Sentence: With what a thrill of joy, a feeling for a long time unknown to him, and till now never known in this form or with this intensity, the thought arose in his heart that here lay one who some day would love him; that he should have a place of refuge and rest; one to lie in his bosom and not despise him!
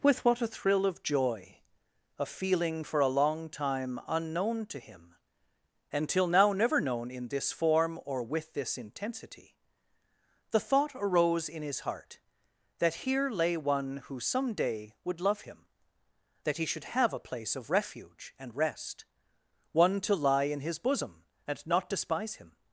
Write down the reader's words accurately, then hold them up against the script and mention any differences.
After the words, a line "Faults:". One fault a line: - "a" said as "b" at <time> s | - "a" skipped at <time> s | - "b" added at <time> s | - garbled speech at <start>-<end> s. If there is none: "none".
With what a thrill of joy, a feeling for a long time unknown to him, and till now never known in this form or with this intensity, the thought arose in his heart that here lay one who some day would love him; that he should have a place of refuge and rest; one to lie in his bosom and not despise him!
Faults:
none